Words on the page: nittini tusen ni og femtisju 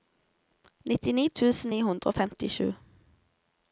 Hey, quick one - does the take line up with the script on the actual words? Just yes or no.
no